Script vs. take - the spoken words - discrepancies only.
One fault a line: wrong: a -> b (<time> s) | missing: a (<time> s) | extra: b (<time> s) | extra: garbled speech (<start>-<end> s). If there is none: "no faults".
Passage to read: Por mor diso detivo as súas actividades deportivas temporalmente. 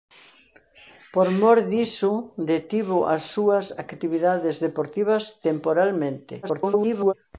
extra: garbled speech (6.4-7.1 s)